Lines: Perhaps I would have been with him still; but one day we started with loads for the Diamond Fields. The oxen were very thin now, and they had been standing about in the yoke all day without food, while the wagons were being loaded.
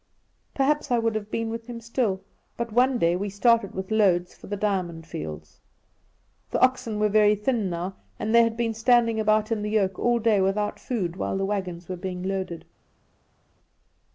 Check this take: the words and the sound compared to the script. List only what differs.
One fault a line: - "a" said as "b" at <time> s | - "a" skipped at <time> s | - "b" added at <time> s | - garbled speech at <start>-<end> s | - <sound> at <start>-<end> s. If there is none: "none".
none